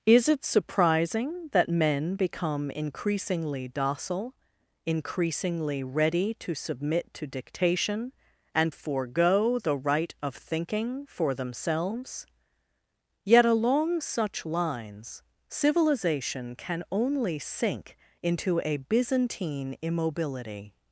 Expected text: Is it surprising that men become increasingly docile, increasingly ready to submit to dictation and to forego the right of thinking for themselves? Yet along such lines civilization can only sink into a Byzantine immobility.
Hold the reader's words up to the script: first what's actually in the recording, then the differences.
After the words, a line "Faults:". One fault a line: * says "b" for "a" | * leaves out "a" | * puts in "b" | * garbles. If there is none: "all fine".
Is it surprising that men become increasingly docile, increasingly ready to submit to dictation and forego the right of thinking for themselves? Yet along such lines civilization can only sink into a Byzantine immobility.
Faults:
* leaves out "to"